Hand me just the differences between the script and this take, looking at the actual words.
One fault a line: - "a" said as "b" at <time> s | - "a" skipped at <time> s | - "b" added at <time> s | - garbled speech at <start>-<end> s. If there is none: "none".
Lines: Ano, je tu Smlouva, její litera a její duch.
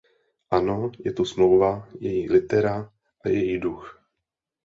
none